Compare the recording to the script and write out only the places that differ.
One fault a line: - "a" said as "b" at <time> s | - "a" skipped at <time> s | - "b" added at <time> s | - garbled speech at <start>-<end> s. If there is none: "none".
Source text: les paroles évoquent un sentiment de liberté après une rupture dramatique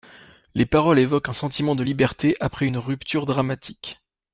none